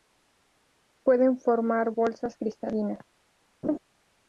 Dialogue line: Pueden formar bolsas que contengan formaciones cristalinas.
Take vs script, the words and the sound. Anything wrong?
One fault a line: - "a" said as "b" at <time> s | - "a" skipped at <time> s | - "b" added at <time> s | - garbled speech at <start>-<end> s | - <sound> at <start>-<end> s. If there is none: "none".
- "que contengan formaciones" skipped at 2.4 s
- laugh at 3.6-3.8 s